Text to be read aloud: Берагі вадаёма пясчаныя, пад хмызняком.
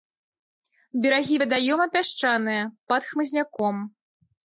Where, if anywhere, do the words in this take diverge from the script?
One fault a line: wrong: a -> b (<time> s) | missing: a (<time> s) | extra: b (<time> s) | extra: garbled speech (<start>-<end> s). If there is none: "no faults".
no faults